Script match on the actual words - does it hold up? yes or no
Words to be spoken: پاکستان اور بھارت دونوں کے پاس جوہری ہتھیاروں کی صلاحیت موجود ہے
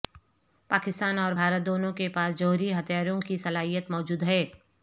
yes